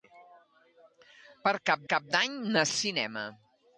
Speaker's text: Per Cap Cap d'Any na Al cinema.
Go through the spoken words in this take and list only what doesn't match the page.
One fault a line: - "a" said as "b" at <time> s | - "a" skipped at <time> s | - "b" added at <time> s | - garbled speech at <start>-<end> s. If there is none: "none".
none